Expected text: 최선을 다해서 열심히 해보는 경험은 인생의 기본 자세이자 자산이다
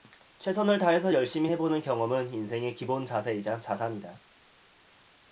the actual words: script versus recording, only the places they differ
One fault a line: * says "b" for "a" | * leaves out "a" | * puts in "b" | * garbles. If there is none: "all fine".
all fine